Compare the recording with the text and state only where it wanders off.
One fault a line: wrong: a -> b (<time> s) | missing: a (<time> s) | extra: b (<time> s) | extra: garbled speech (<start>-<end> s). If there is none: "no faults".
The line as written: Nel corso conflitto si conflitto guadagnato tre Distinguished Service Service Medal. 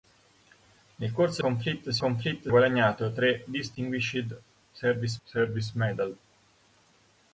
no faults